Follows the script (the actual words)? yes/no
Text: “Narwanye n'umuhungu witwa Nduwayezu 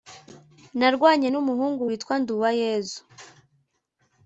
yes